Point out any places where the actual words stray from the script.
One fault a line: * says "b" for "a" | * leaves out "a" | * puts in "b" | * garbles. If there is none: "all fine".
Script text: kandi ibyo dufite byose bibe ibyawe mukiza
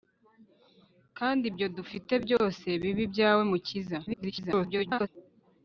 * garbles